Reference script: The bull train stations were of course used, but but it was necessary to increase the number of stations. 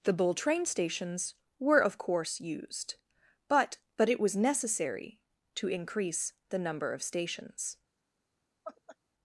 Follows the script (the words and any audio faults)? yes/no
no